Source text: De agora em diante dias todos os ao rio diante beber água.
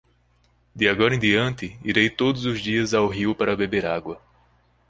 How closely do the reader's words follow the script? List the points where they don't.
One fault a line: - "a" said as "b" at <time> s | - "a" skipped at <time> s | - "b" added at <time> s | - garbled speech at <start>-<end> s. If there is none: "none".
- "dias" said as "irei" at 1.8 s
- "dias" added at 2.6 s
- "diante" said as "para" at 3.4 s